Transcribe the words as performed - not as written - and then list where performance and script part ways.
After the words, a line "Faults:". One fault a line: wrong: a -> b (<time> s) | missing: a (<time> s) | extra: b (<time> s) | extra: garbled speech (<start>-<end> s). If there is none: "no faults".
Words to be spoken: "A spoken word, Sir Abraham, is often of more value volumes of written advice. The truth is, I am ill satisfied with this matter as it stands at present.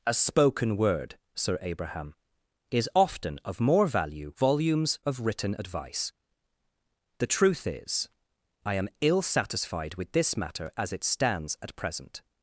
"A spoken word, Sir Abraham, is often of more value volumes of written advice. The truth is, I am ill satisfied with this matter as it stands at present.
Faults:
no faults